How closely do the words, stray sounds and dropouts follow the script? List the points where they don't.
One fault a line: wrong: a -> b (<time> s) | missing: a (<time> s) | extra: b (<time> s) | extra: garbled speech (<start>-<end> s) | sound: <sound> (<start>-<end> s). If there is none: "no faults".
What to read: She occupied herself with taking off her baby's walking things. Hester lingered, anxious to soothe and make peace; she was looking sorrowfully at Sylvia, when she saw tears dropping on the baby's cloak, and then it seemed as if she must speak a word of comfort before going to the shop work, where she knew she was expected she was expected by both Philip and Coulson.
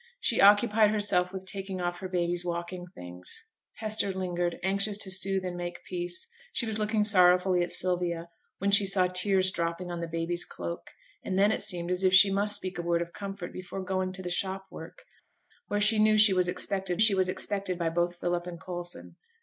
no faults